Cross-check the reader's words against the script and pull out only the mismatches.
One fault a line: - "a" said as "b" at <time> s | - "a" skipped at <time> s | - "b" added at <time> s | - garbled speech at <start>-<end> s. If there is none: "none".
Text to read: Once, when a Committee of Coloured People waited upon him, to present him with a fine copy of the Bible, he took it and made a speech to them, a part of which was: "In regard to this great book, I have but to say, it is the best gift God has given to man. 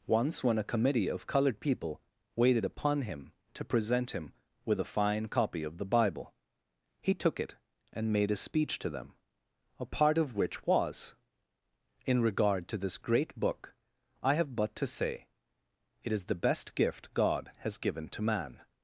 none